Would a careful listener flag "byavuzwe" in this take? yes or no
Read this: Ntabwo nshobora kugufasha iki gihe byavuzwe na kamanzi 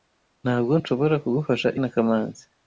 yes